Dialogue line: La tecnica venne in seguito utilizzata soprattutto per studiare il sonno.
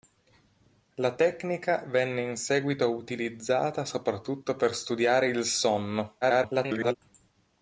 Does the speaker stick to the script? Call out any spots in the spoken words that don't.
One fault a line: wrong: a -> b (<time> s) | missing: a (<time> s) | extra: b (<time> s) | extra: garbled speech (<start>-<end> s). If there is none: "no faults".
extra: garbled speech (6.2-7.0 s)